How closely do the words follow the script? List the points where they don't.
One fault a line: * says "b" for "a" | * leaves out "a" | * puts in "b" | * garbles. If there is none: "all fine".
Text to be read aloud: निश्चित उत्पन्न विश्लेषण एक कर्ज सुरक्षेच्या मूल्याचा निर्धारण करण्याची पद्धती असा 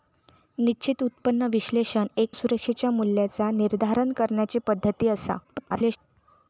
* leaves out "कर्ज"
* garbles